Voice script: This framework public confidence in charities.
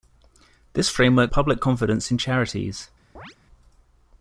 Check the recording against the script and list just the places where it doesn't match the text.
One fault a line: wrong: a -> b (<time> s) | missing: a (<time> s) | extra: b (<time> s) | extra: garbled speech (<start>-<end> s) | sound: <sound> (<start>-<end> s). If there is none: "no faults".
sound: chirp (3.1-3.4 s)